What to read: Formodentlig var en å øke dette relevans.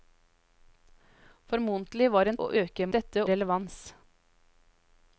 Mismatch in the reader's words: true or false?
false